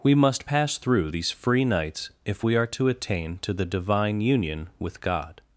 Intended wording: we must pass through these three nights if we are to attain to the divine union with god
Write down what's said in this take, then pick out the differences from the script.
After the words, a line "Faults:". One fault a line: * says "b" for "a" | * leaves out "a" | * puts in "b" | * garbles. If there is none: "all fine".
we must pass through these free nights if we are to attain to the divine union with god
Faults:
* says "free" for "three"